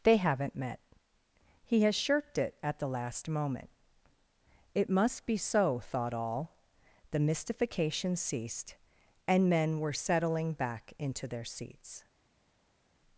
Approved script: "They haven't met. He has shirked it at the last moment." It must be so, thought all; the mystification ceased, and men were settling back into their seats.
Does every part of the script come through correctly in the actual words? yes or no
yes